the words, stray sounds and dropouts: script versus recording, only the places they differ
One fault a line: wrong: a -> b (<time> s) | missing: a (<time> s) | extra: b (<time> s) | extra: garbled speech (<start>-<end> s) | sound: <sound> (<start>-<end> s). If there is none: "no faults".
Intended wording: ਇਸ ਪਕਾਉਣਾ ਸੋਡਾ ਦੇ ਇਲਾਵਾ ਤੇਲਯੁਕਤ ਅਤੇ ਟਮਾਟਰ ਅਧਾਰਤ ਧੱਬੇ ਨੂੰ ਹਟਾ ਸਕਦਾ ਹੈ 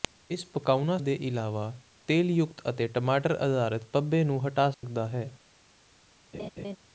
missing: ਸੋਡਾ (1.0 s)
sound: dropout (4.7-4.8 s)
sound: laugh (6.3-6.8 s)